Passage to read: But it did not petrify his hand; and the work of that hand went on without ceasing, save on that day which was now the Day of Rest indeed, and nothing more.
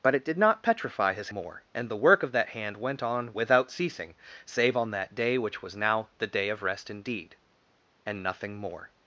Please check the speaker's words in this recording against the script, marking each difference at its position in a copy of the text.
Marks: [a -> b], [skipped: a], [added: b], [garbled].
But it did not petrify his [hand; -> more] and the work of that hand went on without ceasing, save on that day which was now the Day of Rest indeed, and nothing more.